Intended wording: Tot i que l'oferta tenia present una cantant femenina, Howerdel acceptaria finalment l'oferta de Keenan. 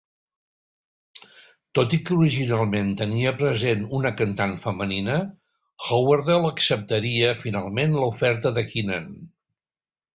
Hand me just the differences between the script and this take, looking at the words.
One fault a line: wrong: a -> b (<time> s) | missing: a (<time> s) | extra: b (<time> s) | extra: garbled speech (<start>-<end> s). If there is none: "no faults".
wrong: l'oferta -> originalment (2.2 s)